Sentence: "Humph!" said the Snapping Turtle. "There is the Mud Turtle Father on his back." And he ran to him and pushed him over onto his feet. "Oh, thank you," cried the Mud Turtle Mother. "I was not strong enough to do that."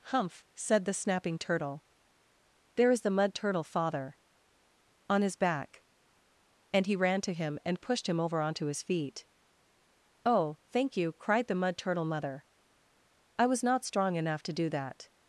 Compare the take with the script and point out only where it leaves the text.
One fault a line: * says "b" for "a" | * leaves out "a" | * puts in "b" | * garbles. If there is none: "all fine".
all fine